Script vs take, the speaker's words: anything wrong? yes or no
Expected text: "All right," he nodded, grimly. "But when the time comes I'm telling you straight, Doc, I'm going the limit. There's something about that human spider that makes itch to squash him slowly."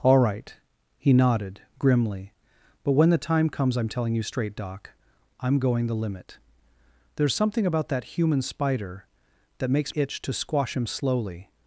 no